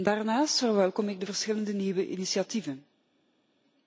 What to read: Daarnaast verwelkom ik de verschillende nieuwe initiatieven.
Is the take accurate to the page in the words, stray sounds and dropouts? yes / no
yes